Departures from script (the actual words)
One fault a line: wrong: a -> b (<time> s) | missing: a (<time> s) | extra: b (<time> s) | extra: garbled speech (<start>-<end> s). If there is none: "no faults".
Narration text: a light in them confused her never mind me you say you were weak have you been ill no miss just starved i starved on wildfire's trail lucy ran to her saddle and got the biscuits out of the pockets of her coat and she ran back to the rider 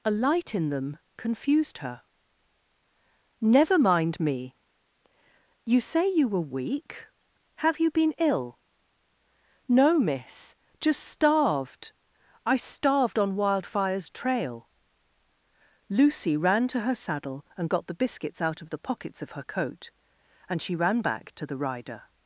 no faults